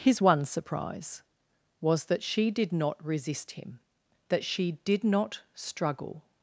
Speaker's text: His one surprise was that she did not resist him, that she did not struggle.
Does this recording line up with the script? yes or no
yes